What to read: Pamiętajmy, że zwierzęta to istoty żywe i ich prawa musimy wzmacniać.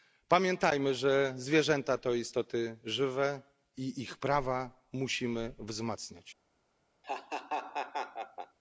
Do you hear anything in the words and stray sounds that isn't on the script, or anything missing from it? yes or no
yes